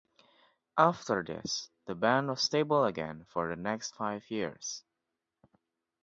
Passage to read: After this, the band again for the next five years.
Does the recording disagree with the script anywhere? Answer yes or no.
yes